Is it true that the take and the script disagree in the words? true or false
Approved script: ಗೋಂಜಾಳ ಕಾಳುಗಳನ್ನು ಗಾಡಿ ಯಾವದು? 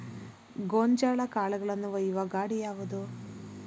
true